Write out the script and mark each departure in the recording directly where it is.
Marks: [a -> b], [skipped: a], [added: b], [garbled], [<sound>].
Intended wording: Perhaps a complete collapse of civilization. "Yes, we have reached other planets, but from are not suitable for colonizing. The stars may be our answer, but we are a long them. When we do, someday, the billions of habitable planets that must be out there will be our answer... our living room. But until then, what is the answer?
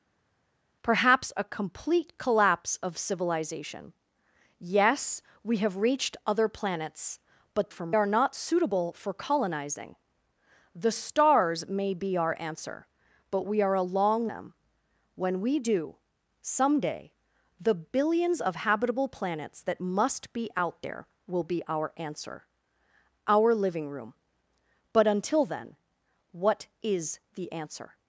Perhaps a complete collapse of civilization. "Yes, we have reached other planets, but from are not suitable for colonizing. The stars may be our answer, but we are a long them. When we do, someday, the billions of habitable planets that must be out there will be our answer... our living room. But until then, what is the answer?